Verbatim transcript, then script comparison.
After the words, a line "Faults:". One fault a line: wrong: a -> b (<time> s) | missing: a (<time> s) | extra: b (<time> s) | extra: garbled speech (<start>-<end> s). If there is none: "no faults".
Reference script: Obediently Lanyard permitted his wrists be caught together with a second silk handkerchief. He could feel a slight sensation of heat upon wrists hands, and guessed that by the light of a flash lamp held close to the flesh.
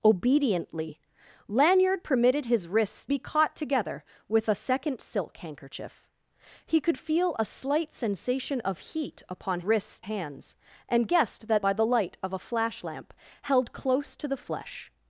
Obediently Lanyard permitted his wrists be caught together with a second silk handkerchief. He could feel a slight sensation of heat upon wrists hands, and guessed that by the light of a flash lamp held close to the flesh.
Faults:
no faults